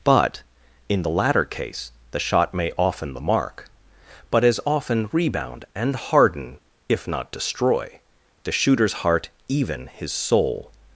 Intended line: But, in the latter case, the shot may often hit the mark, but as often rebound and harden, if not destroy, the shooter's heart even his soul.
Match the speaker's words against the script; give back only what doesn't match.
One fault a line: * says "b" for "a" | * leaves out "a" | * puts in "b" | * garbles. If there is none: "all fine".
* leaves out "hit"